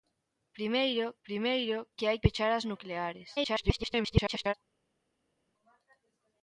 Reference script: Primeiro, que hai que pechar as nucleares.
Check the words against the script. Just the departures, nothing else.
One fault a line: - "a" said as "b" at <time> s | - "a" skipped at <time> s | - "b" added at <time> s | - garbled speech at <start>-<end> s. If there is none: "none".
- "primeiro" added at 1.3 s
- "que" skipped at 2.2 s
- garbled speech at 3.4-4.5 s